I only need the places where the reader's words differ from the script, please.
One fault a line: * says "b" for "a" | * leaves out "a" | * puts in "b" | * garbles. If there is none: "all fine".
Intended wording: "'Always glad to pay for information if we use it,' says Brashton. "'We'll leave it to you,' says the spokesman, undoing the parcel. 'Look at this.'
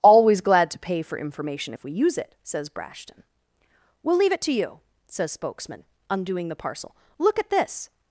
* leaves out "the"